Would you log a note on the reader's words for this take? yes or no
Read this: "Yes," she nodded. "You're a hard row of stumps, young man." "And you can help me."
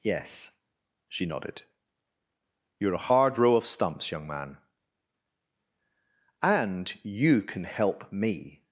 no